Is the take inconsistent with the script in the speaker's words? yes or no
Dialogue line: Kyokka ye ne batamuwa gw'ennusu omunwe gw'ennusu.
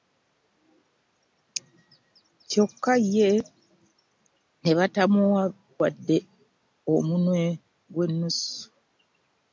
yes